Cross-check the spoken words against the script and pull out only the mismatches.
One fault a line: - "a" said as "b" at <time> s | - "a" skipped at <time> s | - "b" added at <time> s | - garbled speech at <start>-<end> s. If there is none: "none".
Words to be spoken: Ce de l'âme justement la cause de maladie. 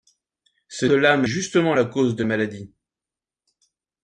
none